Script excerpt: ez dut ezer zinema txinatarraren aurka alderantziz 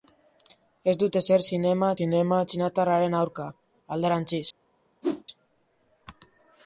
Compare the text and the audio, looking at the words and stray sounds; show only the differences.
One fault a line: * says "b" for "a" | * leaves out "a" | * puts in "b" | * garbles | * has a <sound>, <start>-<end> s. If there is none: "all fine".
* puts in "zinema"
* has a whoosh, 5.0-5.2 s